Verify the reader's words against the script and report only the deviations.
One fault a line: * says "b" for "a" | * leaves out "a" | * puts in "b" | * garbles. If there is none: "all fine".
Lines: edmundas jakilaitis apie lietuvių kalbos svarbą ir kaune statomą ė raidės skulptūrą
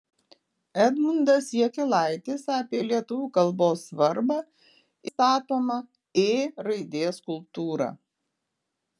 * leaves out "ir kaune"